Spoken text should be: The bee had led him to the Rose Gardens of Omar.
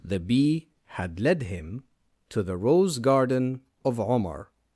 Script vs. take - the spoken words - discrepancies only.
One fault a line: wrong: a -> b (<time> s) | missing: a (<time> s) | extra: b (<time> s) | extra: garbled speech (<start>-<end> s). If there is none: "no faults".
wrong: Gardens -> Garden (3.0 s)